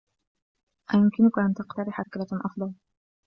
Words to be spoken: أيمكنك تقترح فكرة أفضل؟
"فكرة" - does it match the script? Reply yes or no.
yes